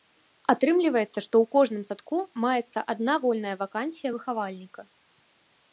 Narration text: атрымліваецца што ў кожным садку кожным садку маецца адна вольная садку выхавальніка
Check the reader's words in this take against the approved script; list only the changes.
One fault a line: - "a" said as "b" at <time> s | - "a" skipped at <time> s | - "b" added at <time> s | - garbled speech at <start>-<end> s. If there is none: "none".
- "кожным садку" skipped at 2.2 s
- "садку" said as "вакансія" at 3.6 s